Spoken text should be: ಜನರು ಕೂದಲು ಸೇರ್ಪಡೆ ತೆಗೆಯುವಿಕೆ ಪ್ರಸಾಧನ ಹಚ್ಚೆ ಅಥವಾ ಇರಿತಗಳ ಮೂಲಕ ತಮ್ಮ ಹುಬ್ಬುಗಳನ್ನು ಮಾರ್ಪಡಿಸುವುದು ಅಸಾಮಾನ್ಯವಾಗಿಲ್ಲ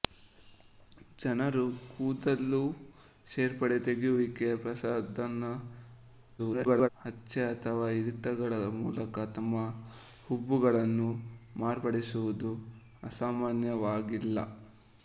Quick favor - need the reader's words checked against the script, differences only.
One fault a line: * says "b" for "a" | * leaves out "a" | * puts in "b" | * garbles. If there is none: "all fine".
* garbles